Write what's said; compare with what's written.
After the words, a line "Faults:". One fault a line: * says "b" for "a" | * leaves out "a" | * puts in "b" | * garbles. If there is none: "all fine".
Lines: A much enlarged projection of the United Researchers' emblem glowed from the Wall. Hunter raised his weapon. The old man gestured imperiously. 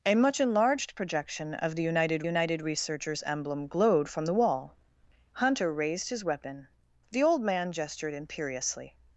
A much enlarged projection of the United United Researchers' emblem glowed from the Wall. Hunter raised his weapon. The old man gestured imperiously.
Faults:
* puts in "United"